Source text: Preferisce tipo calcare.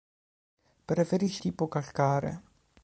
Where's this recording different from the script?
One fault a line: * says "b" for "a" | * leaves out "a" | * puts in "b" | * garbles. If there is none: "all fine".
all fine